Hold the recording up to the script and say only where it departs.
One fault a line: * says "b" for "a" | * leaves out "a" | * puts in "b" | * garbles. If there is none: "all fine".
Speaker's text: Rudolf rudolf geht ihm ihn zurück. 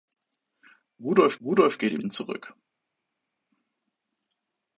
all fine